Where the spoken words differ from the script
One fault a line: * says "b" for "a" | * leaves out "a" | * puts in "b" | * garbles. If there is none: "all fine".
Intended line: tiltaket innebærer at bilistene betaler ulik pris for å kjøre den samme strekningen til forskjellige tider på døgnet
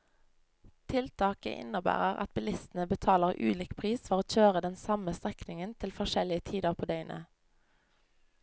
all fine